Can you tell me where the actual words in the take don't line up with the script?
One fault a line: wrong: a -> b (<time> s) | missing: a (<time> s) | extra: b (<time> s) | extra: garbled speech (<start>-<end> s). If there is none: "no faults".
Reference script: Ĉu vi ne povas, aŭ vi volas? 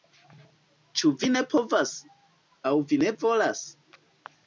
extra: ne (3.0 s)